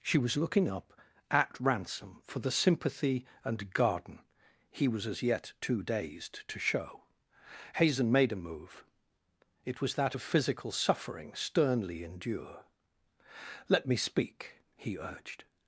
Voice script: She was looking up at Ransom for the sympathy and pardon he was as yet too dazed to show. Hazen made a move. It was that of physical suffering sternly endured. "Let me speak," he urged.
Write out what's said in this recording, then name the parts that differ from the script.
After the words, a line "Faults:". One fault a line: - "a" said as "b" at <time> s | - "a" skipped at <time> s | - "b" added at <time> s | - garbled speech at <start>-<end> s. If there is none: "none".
She was looking up at Ransom for the sympathy and garden he was as yet too dazed to show. Hazen made a move. It was that of physical suffering sternly endure. "Let me speak," he urged.
Faults:
- "pardon" said as "garden" at 3.7 s
- "endured" said as "endure" at 12.0 s